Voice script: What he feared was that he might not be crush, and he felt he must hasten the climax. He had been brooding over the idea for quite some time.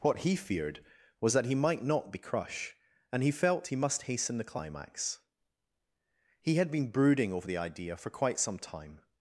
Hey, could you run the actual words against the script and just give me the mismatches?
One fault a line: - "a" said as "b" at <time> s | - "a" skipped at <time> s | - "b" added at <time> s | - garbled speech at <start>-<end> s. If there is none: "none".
none